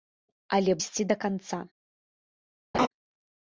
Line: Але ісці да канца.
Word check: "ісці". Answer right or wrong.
right